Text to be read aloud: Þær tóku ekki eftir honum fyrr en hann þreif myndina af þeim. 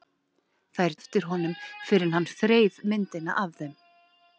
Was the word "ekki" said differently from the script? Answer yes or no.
yes